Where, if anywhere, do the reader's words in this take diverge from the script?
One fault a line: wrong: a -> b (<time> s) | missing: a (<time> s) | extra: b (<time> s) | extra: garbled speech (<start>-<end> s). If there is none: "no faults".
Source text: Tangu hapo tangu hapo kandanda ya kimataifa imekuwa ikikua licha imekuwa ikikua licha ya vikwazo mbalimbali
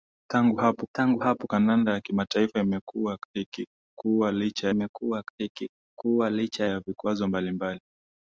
no faults